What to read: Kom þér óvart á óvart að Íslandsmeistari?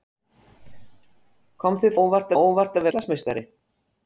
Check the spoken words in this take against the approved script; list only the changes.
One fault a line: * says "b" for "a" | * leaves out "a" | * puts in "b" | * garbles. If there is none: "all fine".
all fine